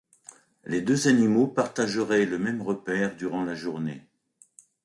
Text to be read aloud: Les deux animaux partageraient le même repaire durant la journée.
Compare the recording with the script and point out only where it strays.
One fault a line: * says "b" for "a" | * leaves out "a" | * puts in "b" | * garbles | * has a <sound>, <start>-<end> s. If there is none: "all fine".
all fine